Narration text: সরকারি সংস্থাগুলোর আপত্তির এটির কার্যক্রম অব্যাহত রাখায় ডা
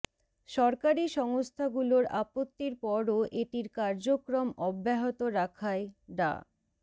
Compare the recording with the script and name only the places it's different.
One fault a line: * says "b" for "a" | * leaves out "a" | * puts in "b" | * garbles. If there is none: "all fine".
* puts in "পরও"